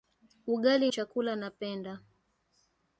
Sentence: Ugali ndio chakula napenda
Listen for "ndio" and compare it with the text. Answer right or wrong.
wrong